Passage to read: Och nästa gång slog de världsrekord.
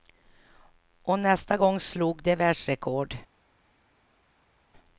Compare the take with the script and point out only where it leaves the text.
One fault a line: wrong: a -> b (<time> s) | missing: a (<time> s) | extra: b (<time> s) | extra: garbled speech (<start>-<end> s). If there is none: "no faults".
no faults